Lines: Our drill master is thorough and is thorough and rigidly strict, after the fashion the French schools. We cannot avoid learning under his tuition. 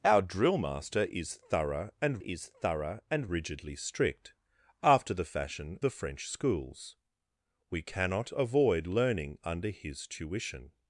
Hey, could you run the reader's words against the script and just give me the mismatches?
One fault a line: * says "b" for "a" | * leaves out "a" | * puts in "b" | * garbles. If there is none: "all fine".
all fine